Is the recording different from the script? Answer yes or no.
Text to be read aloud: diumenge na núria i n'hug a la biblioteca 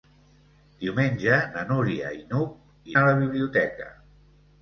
no